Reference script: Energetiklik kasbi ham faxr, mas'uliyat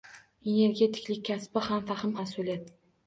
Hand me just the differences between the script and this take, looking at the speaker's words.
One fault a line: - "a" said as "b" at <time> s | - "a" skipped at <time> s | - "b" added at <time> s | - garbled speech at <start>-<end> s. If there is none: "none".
none